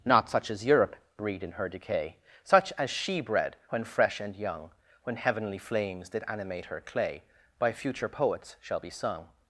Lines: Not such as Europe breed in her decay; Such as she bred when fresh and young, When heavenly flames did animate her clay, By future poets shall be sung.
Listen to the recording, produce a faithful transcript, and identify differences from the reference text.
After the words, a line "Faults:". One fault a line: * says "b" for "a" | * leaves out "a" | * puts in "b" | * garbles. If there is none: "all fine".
Not such as Europe breed in her decay; Such as she bred when fresh and young, When heavenly flames did animate her clay, By future poets shall be sung.
Faults:
all fine